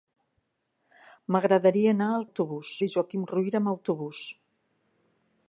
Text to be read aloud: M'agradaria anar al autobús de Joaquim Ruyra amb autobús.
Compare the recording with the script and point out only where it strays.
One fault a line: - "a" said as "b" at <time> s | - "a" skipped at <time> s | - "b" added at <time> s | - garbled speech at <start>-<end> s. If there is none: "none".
none